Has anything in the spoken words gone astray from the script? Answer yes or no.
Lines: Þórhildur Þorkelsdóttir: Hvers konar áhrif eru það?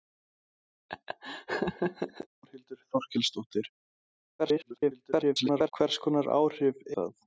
yes